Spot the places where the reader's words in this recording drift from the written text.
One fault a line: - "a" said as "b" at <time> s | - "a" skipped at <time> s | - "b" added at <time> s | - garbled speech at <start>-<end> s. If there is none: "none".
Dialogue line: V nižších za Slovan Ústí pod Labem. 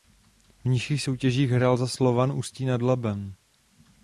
- "soutěžích hrál" added at 1.0 s
- "pod" said as "nad" at 2.6 s